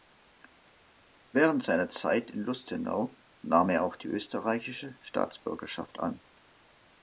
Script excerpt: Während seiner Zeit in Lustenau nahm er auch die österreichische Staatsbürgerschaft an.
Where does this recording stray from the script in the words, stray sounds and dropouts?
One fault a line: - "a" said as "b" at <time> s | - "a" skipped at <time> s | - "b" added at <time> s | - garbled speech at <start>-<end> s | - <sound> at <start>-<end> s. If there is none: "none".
none